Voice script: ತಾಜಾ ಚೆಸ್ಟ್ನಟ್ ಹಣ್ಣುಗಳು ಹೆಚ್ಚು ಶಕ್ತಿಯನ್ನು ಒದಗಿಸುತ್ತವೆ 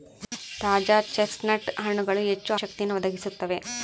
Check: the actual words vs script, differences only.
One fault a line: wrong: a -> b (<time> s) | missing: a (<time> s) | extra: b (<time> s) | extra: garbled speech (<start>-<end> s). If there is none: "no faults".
no faults